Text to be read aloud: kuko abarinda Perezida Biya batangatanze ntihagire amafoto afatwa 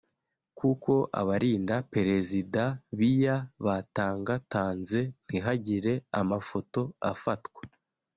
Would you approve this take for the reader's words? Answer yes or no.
yes